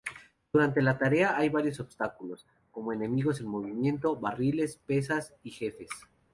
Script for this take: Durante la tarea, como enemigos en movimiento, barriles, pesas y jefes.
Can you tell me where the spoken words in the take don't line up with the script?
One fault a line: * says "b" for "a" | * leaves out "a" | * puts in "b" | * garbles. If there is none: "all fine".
* puts in "hay varios obstáculos"